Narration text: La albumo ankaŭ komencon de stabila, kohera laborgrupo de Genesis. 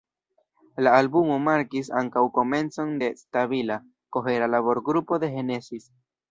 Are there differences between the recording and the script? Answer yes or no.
yes